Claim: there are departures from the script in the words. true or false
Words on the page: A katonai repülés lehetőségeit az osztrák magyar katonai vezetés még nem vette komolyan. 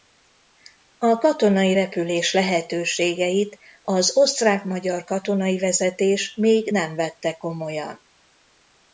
false